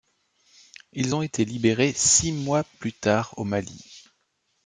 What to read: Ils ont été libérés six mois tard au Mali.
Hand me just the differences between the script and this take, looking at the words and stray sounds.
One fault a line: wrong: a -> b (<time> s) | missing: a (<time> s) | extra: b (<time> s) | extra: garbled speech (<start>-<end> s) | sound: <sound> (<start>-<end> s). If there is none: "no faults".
extra: plus (2.8 s)